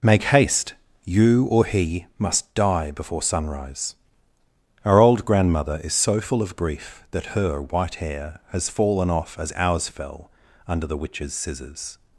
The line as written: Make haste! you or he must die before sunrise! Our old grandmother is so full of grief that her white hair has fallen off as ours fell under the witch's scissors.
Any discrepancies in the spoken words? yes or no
no